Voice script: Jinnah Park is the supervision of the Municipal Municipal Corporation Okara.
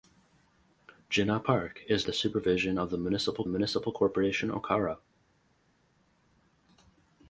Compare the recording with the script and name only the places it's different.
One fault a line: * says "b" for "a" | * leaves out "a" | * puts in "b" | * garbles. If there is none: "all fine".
all fine